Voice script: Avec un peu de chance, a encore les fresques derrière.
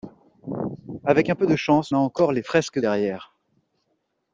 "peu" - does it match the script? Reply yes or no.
yes